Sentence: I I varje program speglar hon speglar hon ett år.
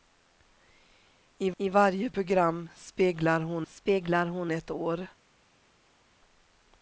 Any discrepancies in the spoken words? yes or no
no